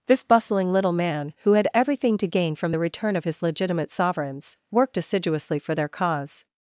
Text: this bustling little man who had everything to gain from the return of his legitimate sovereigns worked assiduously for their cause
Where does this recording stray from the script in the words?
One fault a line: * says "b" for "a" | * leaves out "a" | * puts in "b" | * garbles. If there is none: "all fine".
all fine